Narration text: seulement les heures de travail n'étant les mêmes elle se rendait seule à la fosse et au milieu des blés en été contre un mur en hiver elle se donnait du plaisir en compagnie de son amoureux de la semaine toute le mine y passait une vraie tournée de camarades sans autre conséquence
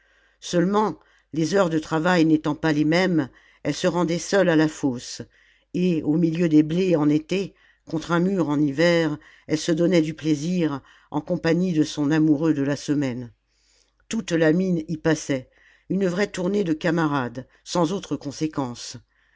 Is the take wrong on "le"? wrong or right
wrong